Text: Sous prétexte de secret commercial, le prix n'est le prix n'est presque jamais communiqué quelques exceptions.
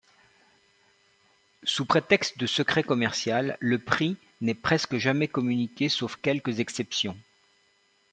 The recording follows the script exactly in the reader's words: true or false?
false